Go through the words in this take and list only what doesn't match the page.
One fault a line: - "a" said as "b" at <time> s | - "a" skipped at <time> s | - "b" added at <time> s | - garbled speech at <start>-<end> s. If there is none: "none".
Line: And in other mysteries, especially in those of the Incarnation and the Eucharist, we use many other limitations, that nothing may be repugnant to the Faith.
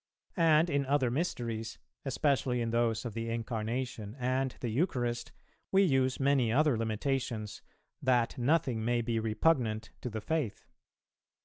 none